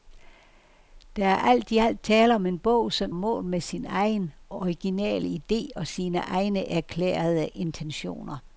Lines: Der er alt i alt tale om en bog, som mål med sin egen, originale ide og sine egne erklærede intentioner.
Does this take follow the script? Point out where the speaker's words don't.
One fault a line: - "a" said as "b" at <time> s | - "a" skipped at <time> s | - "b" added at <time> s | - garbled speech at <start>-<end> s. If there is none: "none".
none